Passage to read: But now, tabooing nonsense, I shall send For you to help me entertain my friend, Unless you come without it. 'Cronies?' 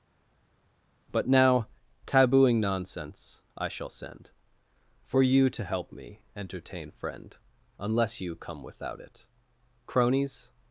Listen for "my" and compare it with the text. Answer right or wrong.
wrong